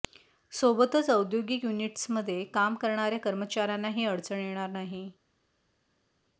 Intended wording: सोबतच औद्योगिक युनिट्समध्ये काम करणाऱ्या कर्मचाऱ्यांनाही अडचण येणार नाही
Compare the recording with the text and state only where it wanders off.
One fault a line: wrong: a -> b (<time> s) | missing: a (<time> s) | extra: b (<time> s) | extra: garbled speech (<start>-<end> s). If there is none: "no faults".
no faults